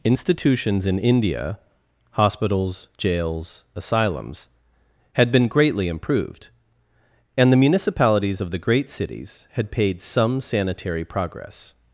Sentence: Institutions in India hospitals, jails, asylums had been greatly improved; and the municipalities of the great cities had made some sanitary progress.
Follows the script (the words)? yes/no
no